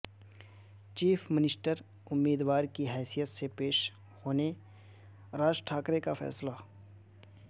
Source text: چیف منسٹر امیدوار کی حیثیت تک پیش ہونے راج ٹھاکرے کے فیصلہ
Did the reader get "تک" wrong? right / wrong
wrong